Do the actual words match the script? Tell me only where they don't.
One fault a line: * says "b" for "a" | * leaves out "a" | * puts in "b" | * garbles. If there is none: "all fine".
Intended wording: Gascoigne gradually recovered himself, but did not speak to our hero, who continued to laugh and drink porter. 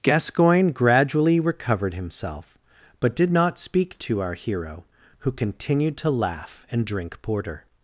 all fine